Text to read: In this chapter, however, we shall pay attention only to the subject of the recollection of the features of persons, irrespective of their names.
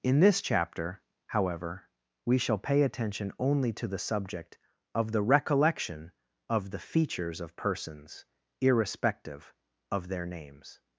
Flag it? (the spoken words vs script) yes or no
no